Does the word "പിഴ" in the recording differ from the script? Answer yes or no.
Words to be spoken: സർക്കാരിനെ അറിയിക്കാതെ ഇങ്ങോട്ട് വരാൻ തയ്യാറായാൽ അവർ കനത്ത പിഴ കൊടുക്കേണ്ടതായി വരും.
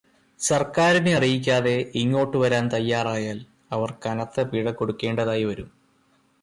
no